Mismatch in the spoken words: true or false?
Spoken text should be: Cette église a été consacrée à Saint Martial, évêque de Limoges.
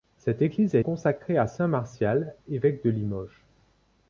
true